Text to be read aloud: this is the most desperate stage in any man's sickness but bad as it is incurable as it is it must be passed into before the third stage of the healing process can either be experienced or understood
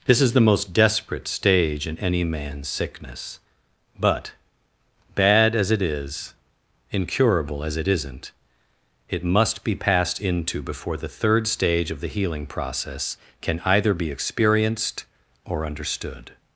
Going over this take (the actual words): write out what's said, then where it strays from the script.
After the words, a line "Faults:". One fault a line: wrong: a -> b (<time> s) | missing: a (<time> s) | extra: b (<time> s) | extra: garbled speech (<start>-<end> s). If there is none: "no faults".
this is the most desperate stage in any man's sickness but bad as it is incurable as it isn't it must be passed into before the third stage of the healing process can either be experienced or understood
Faults:
wrong: is -> isn't (7.9 s)